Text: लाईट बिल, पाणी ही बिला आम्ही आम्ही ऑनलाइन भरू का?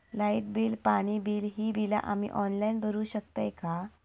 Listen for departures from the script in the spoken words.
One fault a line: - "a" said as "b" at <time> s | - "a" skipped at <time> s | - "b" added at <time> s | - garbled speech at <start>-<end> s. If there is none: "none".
- "बिल" added at 1.2 s
- "आम्ही" skipped at 2.3 s
- "शकतय" added at 3.0 s